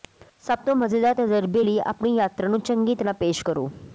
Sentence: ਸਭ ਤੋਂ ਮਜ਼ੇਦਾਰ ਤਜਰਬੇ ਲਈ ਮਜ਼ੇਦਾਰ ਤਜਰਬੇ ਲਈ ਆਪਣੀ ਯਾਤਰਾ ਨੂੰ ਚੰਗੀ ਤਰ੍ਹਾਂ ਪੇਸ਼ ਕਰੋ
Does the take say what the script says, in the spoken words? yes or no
no